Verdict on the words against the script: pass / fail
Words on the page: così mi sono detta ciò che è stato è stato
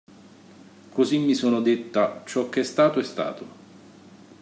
pass